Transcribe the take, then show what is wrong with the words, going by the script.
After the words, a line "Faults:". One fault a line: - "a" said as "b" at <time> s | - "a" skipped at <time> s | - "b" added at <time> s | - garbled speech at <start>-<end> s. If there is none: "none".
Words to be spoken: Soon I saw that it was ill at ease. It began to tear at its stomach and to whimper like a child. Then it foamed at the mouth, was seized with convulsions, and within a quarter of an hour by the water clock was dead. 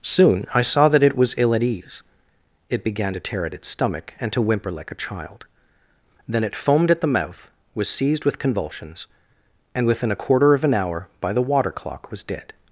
Soon I saw that it was ill at ease. It began to tear at its stomach and to whimper like a child. Then it foamed at the mouth, was seized with convulsions, and within a quarter of an hour by the water clock was dead.
Faults:
none